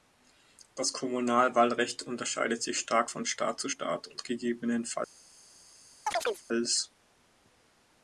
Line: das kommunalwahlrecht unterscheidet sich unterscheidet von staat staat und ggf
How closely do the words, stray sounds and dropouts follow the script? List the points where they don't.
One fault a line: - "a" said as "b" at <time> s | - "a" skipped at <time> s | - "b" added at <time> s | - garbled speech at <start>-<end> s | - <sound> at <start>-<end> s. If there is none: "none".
- "unterscheidet" said as "stark" at 2.8 s
- "zu" added at 3.6 s
- chirp at 6.1-6.4 s